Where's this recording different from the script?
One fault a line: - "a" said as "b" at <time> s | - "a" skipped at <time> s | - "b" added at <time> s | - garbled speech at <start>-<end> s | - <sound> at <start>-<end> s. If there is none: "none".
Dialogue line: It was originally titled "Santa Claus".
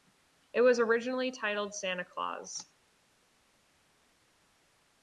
none